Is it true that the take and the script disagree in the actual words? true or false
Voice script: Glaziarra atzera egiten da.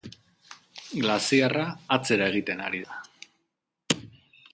true